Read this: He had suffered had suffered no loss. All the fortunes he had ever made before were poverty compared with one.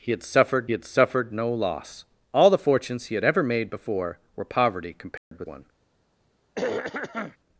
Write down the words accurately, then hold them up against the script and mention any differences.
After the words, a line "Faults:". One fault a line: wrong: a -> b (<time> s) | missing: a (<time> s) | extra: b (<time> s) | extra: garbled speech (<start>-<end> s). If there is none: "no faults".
He had suffered had suffered no loss. All the fortunes he had ever made before were poverty compared with one.
Faults:
no faults